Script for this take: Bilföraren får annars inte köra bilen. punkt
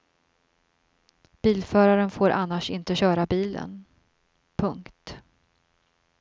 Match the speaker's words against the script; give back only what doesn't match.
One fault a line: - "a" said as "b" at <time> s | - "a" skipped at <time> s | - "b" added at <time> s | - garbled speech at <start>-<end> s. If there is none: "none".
none